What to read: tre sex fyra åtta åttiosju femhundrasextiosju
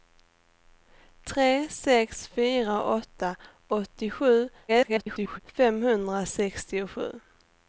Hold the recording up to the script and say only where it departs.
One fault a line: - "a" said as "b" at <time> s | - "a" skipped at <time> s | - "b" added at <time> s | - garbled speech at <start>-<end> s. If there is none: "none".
- garbled speech at 4.7-5.4 s